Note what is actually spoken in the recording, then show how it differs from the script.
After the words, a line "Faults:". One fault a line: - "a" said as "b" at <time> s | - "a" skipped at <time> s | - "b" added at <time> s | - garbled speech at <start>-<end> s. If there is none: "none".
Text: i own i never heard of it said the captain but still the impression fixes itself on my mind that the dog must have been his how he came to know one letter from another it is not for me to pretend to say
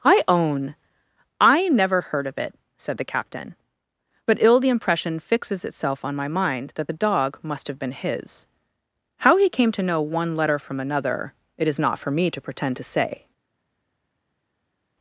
i own i never heard of it said the captain but ill the impression fixes itself on my mind that the dog must have been his how he came to know one letter from another it is not for me to pretend to say
Faults:
- "still" said as "ill" at 4.4 s